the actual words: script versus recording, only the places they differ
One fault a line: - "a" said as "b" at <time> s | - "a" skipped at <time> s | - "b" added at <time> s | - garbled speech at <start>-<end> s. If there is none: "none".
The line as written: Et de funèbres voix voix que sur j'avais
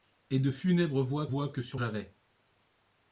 none